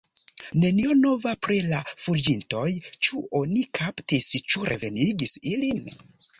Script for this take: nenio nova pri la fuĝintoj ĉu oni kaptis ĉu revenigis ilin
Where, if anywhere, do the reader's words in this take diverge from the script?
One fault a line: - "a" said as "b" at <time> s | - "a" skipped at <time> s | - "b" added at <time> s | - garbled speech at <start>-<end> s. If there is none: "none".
none